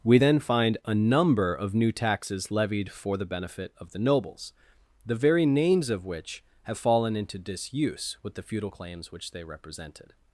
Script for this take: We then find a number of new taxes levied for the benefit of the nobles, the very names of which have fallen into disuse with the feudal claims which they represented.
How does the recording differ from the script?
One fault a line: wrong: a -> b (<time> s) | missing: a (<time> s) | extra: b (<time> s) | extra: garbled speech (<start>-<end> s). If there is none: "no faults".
no faults